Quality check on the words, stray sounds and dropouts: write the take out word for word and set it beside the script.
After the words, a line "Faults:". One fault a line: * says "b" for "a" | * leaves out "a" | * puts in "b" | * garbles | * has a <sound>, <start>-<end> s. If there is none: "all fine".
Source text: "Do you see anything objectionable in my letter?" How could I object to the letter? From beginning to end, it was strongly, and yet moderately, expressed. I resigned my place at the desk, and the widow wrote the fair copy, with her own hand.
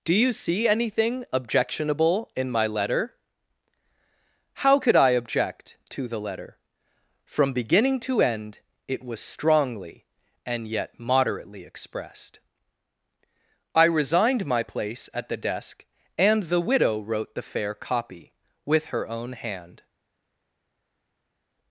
"Do you see anything objectionable in my letter?" How could I object to the letter? From beginning to end, it was strongly, and yet moderately, expressed. I resigned my place at the desk, and the widow wrote the fair copy, with her own hand.
Faults:
all fine